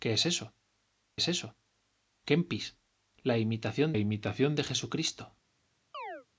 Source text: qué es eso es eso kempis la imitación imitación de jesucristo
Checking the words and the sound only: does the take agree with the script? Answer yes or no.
no